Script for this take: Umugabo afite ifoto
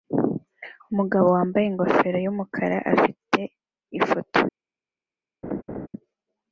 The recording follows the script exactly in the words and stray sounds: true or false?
false